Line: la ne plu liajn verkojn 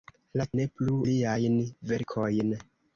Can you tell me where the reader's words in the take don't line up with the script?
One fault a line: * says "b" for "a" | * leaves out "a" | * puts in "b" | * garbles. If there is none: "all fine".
all fine